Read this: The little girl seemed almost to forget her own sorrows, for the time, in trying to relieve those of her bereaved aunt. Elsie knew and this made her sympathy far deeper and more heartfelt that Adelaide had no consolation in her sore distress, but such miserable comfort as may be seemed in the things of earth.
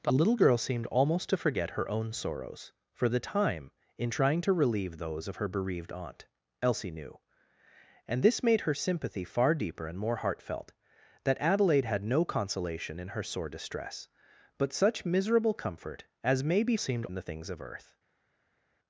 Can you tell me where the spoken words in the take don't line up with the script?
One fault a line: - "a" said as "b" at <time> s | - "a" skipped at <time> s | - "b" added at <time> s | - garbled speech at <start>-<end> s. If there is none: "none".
none